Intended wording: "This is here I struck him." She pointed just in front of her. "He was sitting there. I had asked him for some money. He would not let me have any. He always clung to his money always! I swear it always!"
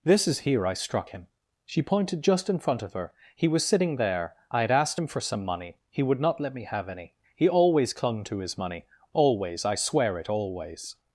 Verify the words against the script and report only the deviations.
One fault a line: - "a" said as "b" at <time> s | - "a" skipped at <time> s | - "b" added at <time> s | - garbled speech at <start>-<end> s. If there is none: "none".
none